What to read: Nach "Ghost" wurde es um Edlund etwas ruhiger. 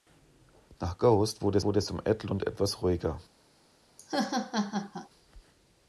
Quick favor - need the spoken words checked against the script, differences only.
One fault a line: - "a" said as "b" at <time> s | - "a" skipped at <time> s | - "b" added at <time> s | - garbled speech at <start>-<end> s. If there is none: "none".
- "wurde" added at 1.6 s